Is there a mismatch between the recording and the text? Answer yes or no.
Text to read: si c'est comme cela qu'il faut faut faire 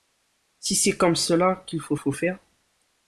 no